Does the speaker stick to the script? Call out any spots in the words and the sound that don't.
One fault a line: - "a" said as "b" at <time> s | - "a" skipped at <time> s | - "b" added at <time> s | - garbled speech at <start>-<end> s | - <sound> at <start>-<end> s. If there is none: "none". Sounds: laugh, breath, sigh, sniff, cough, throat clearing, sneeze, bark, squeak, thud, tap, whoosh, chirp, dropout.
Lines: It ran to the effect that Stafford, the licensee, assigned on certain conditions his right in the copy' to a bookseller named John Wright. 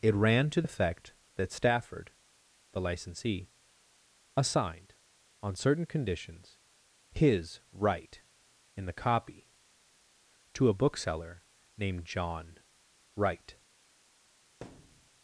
- "the" skipped at 0.6 s
- thud at 14.6-15.1 s